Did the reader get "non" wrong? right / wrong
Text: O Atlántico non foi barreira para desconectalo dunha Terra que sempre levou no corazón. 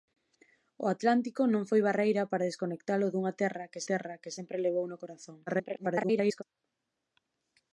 right